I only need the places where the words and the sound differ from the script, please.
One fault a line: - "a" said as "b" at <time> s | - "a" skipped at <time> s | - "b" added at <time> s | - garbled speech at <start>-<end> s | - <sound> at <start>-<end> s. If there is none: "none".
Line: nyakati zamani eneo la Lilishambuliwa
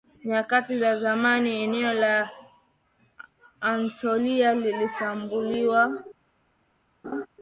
- "za" added at 0.8 s
- "Anatolia" added at 3.6 s
- laugh at 7.0-7.3 s